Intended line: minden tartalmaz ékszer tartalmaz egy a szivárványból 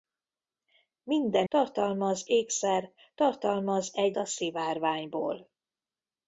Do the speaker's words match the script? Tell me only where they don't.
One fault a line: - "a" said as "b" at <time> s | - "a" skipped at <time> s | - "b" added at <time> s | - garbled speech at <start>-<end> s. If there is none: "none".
none